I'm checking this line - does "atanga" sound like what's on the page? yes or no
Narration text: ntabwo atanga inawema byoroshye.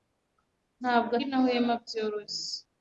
no